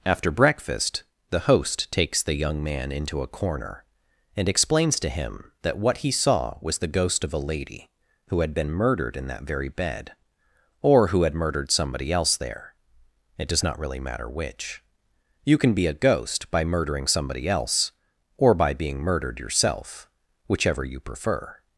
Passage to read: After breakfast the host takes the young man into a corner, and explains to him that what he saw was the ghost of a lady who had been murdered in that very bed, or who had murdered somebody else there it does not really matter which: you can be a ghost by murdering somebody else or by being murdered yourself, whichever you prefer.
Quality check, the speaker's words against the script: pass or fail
pass